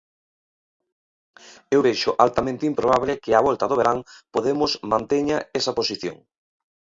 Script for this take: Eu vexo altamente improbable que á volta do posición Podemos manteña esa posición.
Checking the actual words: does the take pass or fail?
fail